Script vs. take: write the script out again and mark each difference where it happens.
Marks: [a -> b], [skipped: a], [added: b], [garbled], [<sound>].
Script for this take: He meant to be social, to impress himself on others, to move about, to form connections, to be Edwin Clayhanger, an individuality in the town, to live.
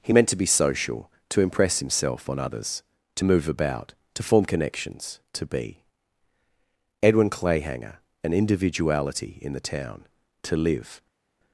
He meant to be social, to impress himself on others, to move about, to form connections, to be Edwin Clayhanger, an individuality in the town, to live.